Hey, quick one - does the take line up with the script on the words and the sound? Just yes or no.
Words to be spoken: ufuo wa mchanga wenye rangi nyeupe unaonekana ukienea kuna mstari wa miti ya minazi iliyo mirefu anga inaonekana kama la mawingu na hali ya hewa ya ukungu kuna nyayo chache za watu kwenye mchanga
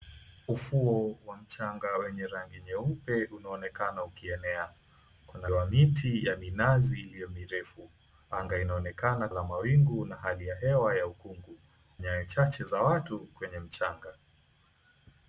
no